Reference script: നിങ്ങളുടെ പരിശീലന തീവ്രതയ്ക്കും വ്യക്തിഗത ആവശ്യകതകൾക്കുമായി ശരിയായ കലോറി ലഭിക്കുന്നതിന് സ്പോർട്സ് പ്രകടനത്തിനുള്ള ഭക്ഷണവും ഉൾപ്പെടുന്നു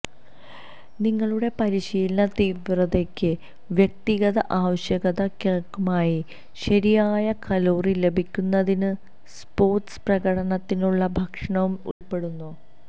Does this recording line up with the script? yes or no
yes